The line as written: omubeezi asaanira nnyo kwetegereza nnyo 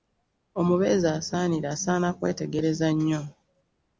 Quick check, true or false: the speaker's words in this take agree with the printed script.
false